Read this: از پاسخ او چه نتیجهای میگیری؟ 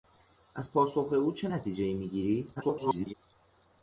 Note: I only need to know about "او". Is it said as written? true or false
true